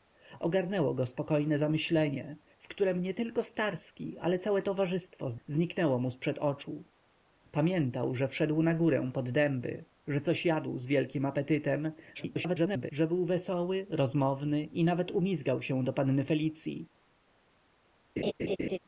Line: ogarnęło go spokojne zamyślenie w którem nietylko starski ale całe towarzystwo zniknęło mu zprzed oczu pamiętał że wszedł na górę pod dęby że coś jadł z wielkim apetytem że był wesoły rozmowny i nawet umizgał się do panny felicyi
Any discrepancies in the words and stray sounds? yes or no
yes